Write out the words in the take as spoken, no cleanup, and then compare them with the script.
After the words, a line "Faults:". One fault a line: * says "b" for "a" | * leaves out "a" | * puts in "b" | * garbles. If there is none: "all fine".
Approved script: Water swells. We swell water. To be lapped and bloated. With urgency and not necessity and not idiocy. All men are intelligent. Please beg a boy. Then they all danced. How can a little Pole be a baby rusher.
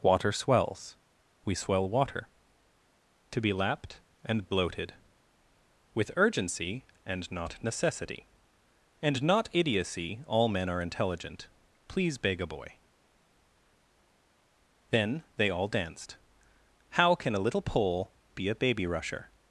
Water swells. We swell water. To be lapped and bloated. With urgency and not necessity and not idiocy. All men are intelligent. Please beg a boy. Then they all danced. How can a little Pole be a baby rusher.
Faults:
all fine